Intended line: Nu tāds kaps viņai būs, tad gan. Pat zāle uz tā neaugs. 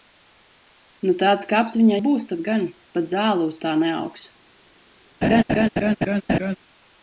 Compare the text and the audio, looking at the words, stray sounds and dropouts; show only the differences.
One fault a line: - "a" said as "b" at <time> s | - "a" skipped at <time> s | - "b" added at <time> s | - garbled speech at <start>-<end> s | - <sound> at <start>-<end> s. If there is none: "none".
- laugh at 5.2-6.6 s